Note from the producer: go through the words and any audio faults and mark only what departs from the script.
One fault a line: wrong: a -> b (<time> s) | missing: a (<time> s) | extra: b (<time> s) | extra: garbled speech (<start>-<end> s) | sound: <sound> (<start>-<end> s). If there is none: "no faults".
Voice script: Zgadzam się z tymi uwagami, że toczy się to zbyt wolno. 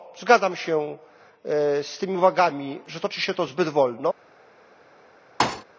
sound: thud (5.4-5.6 s)